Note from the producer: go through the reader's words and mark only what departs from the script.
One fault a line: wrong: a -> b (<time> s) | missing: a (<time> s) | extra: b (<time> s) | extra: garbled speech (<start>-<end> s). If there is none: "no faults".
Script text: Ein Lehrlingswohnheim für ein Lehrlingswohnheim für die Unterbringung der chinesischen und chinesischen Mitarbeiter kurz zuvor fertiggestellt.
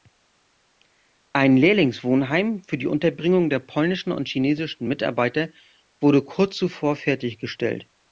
missing: ein Lehrlingswohnheim für (2.8 s)
wrong: chinesischen -> polnischen (3.6 s)
extra: wurde (6.0 s)